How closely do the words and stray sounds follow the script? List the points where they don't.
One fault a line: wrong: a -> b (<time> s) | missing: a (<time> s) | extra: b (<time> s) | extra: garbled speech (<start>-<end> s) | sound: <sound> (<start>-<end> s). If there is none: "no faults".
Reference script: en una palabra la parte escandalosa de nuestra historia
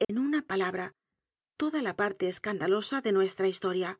sound: dropout (0.0-0.1 s)
extra: toda (1.6 s)